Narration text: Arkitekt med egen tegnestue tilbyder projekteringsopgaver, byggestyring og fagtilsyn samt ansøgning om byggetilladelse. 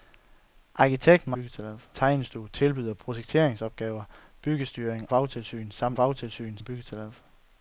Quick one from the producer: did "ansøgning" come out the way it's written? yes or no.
no